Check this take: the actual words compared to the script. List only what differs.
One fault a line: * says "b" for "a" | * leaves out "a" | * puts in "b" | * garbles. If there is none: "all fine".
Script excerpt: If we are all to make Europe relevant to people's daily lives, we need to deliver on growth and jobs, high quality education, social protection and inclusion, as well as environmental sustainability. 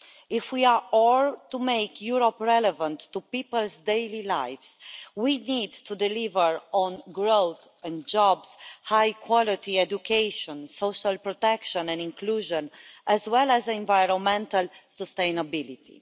all fine